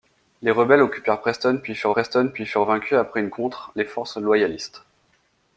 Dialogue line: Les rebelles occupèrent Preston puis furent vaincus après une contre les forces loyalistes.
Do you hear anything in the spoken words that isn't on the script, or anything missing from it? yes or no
yes